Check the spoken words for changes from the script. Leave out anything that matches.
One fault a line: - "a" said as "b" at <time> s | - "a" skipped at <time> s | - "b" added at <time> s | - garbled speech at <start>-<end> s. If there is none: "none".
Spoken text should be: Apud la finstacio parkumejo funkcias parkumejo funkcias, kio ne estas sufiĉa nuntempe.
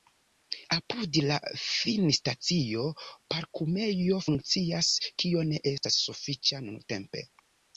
- "parkumejo funkcias" skipped at 4.9 s